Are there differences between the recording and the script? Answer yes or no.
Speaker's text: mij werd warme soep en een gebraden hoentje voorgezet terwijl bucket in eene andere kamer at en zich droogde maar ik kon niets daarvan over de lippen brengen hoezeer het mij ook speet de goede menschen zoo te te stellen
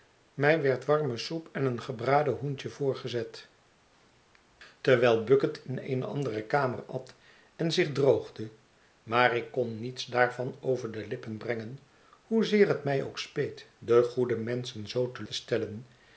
no